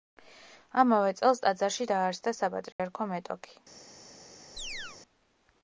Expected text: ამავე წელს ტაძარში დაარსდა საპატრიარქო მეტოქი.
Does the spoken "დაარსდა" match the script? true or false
true